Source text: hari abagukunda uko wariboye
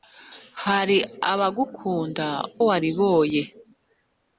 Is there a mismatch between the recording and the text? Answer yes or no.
yes